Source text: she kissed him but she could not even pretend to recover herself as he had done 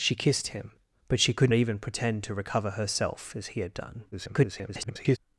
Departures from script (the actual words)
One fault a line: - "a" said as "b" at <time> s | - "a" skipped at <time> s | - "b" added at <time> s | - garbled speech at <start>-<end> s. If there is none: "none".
- "not" skipped at 1.5 s
- garbled speech at 4.1-5.2 s